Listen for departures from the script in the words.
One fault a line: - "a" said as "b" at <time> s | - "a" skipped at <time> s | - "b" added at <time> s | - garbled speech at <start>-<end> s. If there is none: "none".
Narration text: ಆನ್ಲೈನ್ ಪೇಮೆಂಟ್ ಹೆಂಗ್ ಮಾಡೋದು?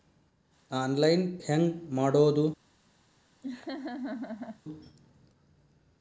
- "ಪೇಮೆಂಟ್" skipped at 1.4 s